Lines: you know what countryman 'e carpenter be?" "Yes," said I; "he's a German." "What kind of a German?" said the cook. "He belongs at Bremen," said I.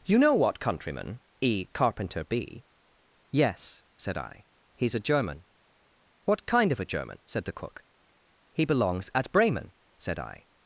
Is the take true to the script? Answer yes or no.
yes